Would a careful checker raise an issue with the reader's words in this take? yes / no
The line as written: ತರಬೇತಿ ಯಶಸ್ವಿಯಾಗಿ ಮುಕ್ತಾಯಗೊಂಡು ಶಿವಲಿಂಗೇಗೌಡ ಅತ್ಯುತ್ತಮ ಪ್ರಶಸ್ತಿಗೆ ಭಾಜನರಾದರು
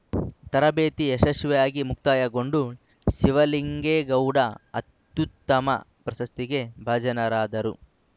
no